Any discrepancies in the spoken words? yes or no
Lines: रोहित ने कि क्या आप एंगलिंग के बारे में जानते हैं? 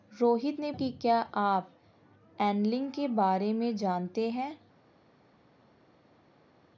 no